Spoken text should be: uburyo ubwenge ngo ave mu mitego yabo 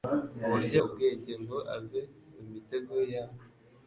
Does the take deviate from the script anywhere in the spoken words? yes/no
no